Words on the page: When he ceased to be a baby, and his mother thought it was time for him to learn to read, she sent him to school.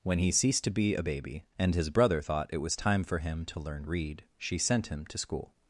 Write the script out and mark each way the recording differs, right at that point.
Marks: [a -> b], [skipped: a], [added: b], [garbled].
When he ceased to be a baby, and his [mother -> brother] thought it was time for him to learn [skipped: to] read, she sent him to school.